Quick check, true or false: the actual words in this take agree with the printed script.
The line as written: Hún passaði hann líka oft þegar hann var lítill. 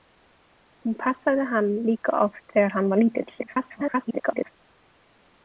false